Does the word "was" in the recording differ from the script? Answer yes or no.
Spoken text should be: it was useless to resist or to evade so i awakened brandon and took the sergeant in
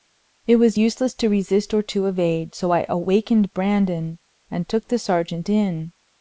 no